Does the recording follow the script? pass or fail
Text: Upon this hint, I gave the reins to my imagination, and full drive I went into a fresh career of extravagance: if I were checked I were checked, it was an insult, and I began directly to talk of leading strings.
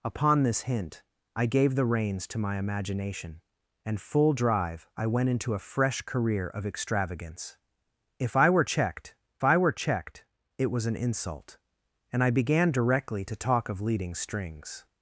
pass